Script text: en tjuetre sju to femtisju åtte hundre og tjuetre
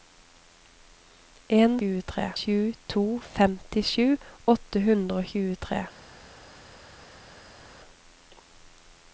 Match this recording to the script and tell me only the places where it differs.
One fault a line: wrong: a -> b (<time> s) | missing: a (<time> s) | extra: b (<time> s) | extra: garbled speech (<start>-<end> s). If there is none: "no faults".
no faults